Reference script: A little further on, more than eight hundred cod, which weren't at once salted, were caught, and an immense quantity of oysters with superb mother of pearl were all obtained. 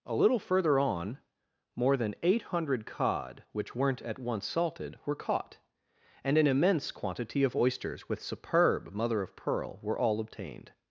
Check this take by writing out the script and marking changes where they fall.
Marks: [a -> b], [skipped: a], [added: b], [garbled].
A little further on, more than eight hundred cod, which weren't at once salted, were caught, and an immense quantity of oysters with superb mother of pearl were all obtained.